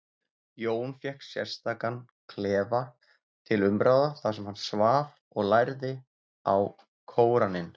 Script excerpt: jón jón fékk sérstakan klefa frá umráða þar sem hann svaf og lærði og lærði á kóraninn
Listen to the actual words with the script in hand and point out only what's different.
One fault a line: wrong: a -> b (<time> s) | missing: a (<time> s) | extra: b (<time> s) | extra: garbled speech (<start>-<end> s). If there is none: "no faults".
missing: jón (0.9 s)
wrong: frá -> til (3.5 s)
missing: og lærði (5.9 s)